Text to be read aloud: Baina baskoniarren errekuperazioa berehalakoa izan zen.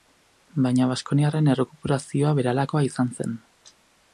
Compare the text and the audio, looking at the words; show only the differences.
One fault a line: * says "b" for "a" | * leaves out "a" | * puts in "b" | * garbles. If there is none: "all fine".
all fine